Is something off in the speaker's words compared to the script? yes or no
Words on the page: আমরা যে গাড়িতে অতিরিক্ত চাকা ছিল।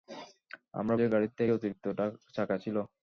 no